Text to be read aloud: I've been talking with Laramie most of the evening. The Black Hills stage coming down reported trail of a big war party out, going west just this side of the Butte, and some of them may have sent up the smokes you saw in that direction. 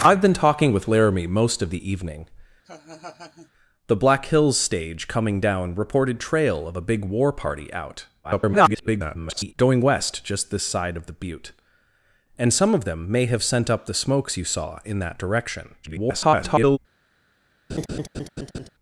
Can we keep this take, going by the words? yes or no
no